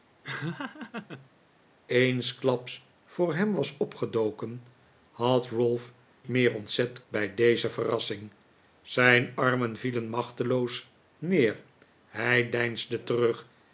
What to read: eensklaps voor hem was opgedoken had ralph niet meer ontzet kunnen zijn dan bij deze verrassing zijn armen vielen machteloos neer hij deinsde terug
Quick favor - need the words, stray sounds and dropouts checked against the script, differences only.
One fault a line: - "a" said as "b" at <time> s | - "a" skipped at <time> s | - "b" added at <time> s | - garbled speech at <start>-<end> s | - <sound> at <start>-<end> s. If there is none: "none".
- laugh at 0.2-1.3 s
- "niet" skipped at 5.9 s
- "kunnen zijn dan" skipped at 7.0 s